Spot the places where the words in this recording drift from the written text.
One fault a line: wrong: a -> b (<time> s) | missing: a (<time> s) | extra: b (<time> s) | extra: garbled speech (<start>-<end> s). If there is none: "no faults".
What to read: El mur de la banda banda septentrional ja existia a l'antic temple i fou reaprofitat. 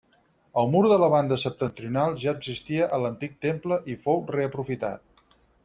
missing: banda (1.4 s)